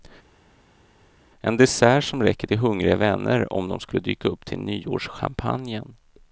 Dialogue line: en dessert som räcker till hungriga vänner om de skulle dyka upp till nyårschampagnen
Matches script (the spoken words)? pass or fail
pass